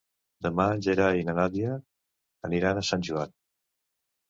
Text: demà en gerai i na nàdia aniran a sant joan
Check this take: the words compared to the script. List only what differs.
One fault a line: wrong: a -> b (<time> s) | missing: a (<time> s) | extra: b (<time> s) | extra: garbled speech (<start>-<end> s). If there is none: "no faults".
no faults